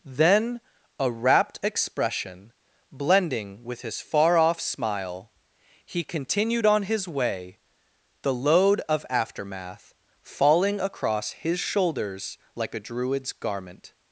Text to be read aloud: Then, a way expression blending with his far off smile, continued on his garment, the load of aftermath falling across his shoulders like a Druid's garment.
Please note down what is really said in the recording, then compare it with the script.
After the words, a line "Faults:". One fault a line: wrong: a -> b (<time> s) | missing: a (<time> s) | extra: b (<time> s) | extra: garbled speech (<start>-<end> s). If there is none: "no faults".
Then, a rapt expression blending with his far off smile, he continued on his way, the load of aftermath falling across his shoulders like a Druid's garment.
Faults:
wrong: way -> rapt (1.1 s)
extra: he (5.8 s)
wrong: garment -> way (7.1 s)